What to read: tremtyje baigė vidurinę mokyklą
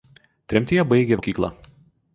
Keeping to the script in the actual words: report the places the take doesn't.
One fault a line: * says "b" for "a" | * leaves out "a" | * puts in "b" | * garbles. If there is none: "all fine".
* leaves out "vidurinę"